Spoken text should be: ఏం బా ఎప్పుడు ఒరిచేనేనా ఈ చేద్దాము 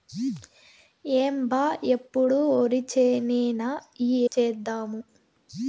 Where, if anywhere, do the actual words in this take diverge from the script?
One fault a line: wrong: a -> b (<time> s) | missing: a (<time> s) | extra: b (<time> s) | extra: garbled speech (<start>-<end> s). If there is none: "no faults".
no faults